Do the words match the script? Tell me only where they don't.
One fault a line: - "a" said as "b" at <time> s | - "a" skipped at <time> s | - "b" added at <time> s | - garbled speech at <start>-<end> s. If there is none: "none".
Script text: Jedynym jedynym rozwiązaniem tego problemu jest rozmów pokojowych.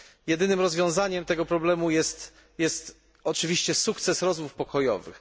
- "jedynym" skipped at 0.6 s
- "oczywiście sukces" added at 3.2 s